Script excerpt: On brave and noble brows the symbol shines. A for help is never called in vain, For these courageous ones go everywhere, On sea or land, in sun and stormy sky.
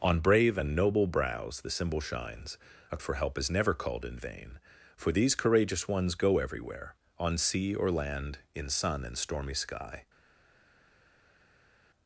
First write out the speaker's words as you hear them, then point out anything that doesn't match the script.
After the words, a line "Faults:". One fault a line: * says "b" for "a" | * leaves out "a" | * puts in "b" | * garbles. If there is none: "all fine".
On brave and noble brows the symbol shines. A for help is never called in vain, For these courageous ones go everywhere, On sea or land, in sun and stormy sky.
Faults:
all fine